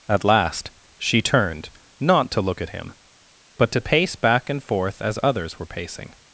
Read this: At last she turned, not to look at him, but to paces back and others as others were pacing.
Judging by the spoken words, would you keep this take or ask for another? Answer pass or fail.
fail